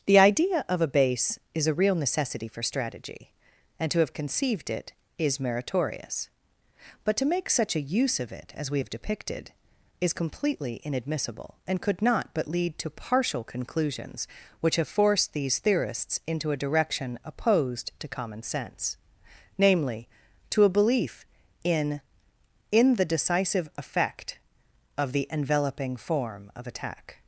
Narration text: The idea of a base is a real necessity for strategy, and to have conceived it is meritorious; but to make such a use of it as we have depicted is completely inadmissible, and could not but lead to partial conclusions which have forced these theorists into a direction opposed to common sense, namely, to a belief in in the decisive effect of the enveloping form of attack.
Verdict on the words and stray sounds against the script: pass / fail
pass